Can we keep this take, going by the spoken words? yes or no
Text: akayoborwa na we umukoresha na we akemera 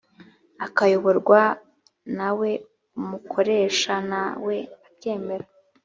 yes